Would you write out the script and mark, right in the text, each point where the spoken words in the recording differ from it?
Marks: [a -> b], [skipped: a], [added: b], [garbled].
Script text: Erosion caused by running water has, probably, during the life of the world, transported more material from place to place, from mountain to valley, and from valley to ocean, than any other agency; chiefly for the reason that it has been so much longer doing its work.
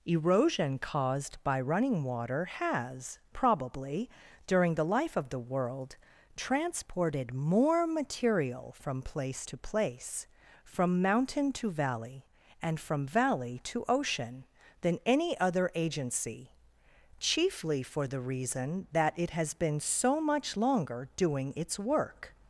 Erosion caused by running water has, probably, during the life of the world, transported more material from place to place, from mountain to valley, and from valley to ocean, than any other agency; chiefly for the reason that it has been so much longer doing its work.